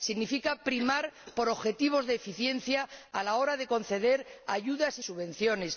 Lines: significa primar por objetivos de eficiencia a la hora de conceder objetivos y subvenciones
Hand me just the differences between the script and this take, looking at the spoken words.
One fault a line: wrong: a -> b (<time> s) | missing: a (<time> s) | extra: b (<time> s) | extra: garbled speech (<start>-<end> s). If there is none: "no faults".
wrong: objetivos -> ayudas (4.5 s)